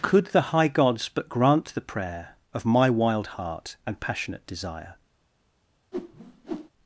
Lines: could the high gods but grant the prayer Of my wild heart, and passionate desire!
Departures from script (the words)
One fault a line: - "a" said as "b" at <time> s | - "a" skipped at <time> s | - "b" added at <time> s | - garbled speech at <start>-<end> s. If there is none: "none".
none